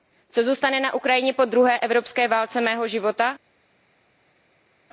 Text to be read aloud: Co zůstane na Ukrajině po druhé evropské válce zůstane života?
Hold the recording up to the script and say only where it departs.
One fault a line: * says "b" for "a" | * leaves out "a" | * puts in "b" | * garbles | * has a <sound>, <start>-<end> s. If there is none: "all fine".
* says "mého" for "zůstane"